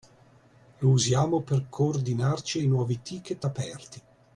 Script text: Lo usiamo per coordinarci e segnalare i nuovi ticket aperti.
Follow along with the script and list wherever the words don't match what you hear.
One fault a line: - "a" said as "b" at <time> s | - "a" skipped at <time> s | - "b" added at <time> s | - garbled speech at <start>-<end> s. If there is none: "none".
- "segnalare" skipped at 2.6 s